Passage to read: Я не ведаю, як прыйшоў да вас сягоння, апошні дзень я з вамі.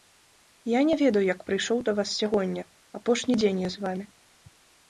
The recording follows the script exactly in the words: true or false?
true